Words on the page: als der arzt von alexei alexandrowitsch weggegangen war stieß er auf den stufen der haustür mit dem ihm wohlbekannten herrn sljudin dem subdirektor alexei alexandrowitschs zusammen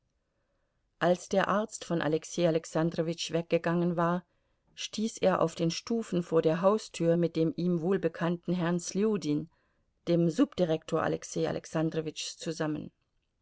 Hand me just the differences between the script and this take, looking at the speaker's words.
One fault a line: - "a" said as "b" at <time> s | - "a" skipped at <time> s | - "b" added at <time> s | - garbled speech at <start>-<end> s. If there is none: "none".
- "vor" added at 6.2 s